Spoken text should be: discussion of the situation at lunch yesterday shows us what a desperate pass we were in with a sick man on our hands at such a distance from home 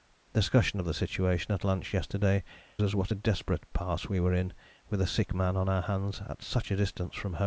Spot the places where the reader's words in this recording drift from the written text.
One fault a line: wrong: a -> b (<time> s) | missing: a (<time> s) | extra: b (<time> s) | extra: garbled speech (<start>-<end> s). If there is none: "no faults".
missing: shows (2.4 s)